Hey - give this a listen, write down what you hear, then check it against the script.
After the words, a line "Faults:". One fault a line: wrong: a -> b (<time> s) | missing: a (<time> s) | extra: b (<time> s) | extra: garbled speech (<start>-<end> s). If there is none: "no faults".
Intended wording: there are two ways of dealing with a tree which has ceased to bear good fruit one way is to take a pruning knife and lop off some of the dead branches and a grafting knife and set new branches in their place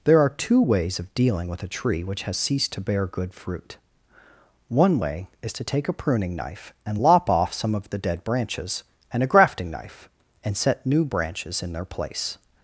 there are two ways of dealing with a tree which has ceased to bear good fruit one way is to take a pruning knife and lop off some of the dead branches and a grafting knife and set new branches in their place
Faults:
no faults